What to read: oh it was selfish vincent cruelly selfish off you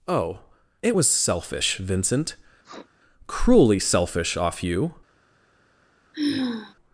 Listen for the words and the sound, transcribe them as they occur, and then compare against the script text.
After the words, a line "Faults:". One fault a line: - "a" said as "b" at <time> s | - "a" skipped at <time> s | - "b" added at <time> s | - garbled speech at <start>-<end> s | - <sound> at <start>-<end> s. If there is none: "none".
oh it was selfish vincent cruelly selfish off you
Faults:
- sniff at 2.6-2.9 s
- sigh at 6.1-6.7 s